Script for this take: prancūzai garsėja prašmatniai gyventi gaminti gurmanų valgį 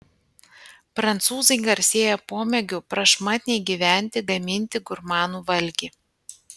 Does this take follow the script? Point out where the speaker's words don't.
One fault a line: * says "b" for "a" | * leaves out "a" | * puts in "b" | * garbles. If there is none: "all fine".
* puts in "pomėgiu"